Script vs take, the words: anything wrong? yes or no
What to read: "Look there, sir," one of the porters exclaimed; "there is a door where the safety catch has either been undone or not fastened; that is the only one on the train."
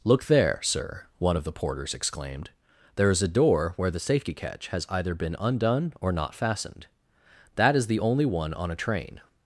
yes